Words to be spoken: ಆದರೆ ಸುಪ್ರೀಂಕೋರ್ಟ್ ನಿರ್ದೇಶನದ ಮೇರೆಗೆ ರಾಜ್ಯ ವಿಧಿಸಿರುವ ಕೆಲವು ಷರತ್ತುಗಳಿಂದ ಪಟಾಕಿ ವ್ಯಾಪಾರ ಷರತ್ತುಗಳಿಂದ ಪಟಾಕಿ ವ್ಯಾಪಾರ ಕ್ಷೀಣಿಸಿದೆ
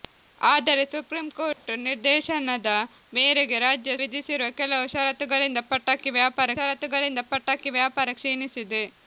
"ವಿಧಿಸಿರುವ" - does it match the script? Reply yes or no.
yes